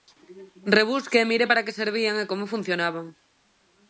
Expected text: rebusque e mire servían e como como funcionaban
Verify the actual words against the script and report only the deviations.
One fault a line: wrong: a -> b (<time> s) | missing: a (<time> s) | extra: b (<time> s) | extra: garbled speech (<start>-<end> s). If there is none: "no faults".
extra: para que (1.5 s)
missing: como (2.5 s)